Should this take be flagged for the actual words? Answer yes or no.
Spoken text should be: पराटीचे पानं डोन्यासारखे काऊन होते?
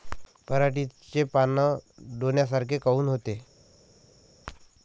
no